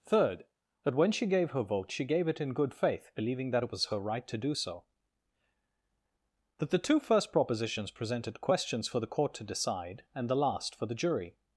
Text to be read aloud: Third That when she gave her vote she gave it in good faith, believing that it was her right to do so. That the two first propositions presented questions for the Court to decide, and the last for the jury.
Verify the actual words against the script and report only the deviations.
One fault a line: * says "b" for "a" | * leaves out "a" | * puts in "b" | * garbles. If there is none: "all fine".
all fine